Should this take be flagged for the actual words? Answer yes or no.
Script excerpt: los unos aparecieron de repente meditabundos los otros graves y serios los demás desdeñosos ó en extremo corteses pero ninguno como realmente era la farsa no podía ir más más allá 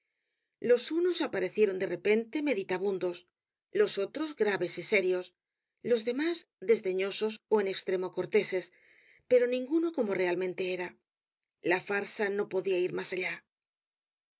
yes